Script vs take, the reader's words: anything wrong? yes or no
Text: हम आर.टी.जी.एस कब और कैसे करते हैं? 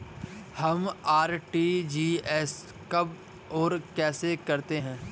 no